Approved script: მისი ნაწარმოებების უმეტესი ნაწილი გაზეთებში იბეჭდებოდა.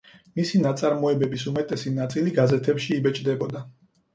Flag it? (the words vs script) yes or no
no